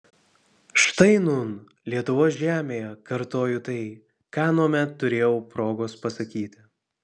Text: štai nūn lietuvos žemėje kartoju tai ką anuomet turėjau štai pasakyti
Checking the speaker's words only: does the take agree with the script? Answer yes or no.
no